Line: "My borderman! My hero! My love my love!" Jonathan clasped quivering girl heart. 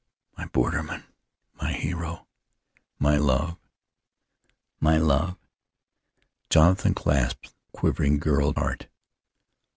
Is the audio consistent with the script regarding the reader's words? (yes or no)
yes